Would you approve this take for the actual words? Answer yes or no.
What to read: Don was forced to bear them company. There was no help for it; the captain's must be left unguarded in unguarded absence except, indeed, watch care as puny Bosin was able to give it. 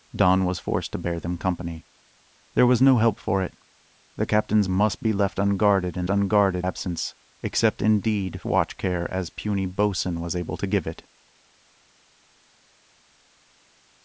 yes